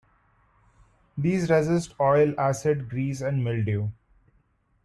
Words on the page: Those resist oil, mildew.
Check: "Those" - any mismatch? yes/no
yes